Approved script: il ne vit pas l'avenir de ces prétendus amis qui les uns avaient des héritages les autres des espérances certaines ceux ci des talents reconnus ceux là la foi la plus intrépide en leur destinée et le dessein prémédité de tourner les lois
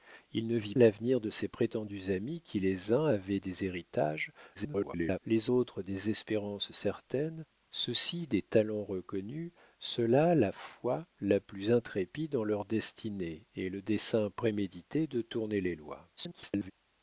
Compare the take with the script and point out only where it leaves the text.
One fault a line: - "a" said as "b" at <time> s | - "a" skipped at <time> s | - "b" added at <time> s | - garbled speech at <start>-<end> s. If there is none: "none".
- "pas" skipped at 0.7 s
- garbled speech at 4.5-5.2 s
- garbled speech at 16.2-16.7 s